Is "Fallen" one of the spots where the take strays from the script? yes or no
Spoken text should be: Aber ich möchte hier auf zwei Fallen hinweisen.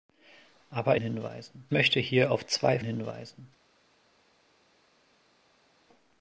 yes